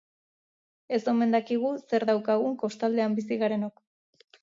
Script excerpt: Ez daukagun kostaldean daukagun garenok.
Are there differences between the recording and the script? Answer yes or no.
yes